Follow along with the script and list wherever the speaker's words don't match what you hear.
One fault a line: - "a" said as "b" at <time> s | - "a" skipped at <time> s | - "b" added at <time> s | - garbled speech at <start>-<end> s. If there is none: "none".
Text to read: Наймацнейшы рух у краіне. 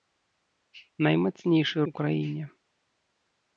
- "рух" skipped at 1.8 s